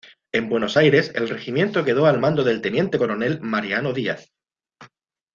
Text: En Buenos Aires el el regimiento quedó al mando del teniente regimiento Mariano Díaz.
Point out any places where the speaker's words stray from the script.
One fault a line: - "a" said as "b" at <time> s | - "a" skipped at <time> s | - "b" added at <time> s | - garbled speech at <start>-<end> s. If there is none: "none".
- "el" skipped at 1.3 s
- "regimiento" said as "coronel" at 3.0 s